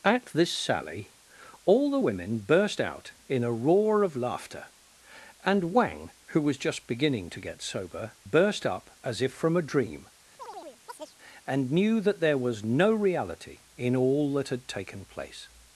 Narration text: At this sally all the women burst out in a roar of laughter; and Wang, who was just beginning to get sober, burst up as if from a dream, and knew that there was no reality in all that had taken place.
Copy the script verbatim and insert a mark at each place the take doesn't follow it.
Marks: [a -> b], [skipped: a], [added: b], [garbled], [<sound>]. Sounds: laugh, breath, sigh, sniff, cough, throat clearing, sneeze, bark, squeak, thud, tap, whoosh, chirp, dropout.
At this sally all the women burst out in a roar of laughter; and Wang, who was just beginning to get sober, burst up as if from a dream, [chirp] and knew that there was no reality in all that had taken place.